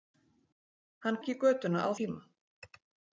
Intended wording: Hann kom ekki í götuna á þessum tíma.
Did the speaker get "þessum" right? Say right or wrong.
wrong